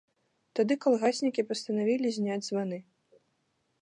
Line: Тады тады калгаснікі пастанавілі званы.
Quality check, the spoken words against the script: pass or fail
fail